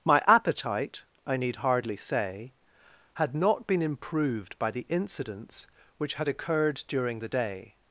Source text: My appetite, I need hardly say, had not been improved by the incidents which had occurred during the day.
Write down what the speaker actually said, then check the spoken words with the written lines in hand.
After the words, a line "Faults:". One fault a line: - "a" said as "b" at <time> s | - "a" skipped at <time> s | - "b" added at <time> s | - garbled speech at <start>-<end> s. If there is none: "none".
My appetite, I need hardly say, had not been improved by the incidents which had occurred during the day.
Faults:
none